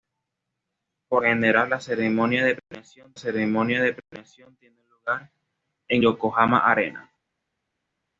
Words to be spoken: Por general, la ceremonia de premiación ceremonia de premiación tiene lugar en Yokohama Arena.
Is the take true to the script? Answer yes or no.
yes